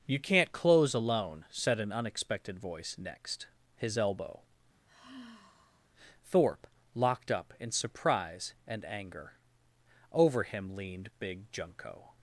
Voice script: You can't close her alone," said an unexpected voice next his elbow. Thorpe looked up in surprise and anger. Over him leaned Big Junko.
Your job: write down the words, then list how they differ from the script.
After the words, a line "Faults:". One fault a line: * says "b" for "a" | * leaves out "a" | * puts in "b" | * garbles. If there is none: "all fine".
You can't close alone," said an unexpected voice next his elbow. Thorpe locked up in surprise and anger. Over him leaned Big Junko.
Faults:
* leaves out "her"
* says "locked" for "looked"